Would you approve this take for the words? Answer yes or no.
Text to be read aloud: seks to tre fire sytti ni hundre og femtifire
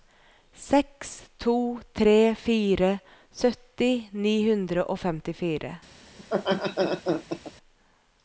yes